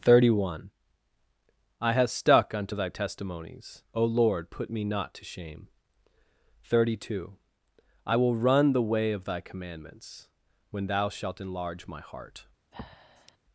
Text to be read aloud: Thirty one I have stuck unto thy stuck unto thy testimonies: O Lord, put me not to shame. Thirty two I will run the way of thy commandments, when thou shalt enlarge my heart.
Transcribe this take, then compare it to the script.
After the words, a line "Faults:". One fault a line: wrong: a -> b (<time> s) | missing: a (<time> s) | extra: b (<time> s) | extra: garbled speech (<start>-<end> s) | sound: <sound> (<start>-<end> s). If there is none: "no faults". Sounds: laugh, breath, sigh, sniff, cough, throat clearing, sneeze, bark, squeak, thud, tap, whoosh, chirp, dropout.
Thirty one I have stuck unto thy testimonies: O Lord, put me not to shame. Thirty two I will run the way of thy commandments, when thou shalt enlarge my heart.
Faults:
missing: stuck unto thy (2.9 s)
sound: breath (12.7-13.4 s)